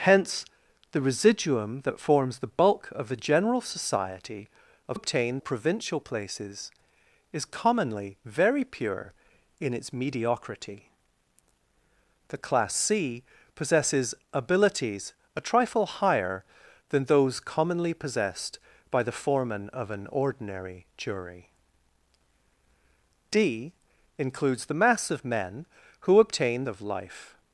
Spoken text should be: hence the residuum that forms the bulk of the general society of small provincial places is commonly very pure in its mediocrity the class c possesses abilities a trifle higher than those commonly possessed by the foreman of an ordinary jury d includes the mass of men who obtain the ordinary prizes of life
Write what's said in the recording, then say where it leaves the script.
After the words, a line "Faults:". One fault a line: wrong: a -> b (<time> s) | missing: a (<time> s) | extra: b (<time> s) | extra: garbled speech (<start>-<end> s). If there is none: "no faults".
hence the residuum that forms the bulk of the general society of obtain provincial places is commonly very pure in its mediocrity the class c possesses abilities a trifle higher than those commonly possessed by the foreman of an ordinary jury d includes the mass of men who obtain of life
Faults:
wrong: small -> obtain (4.9 s)
missing: the ordinary prizes (26.6 s)